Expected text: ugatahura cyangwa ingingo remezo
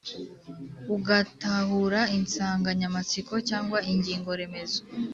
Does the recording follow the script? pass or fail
fail